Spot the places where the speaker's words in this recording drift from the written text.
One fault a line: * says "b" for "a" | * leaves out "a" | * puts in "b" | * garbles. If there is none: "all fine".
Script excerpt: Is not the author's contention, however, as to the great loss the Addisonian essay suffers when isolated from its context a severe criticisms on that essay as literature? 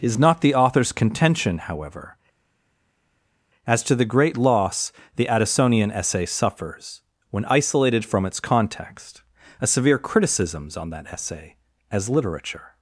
all fine